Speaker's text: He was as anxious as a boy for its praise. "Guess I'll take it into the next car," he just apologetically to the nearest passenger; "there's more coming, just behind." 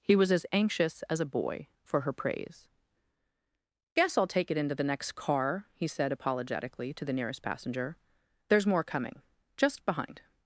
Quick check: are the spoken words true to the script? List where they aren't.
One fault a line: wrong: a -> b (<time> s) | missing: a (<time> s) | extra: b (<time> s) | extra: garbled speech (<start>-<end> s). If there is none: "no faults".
wrong: its -> her (2.0 s)
wrong: just -> said (5.8 s)